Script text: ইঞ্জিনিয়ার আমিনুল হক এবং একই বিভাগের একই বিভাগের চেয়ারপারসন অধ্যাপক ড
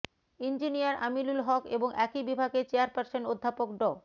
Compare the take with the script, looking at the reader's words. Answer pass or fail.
fail